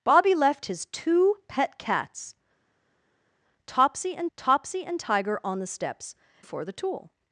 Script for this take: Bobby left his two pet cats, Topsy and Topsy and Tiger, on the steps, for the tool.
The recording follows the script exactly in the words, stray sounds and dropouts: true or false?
true